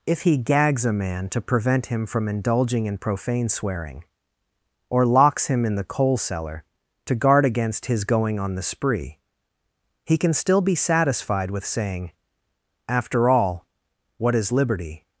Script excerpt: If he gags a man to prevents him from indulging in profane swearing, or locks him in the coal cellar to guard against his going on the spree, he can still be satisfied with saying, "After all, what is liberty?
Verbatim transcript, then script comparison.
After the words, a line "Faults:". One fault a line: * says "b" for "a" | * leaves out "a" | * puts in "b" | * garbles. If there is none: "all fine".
If he gags a man to prevent him from indulging in profane swearing, or locks him in the coal cellar to guard against his going on the spree, he can still be satisfied with saying, "After all, what is liberty?
Faults:
* says "prevent" for "prevents"